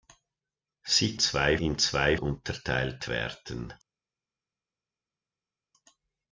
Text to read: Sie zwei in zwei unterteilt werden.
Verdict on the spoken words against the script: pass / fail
pass